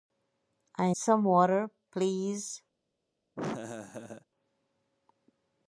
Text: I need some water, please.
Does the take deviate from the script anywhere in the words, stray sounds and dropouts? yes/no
yes